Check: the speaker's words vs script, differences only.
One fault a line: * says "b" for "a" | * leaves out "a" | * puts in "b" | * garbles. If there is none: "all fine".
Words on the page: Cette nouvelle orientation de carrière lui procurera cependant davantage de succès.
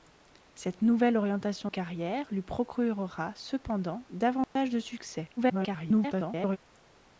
* leaves out "de"
* garbles